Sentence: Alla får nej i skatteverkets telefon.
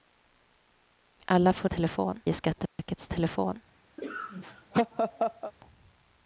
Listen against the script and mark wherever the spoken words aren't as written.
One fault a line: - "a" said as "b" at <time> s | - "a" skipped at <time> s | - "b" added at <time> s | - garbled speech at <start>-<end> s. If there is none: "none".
- "nej" said as "telefon" at 1.7 s